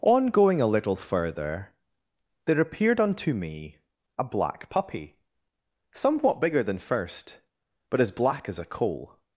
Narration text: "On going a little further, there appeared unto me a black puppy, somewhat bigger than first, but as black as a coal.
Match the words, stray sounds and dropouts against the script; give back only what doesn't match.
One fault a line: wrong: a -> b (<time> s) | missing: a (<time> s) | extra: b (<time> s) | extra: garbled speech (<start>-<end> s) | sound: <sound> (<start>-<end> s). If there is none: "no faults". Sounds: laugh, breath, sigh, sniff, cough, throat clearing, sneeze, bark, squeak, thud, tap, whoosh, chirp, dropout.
no faults